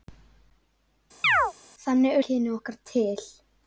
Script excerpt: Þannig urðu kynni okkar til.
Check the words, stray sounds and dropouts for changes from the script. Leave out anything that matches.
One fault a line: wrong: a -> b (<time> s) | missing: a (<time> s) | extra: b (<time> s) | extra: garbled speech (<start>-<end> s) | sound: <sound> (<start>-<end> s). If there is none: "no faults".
sound: chirp (1.2-1.5 s)
missing: urðu (2.2 s)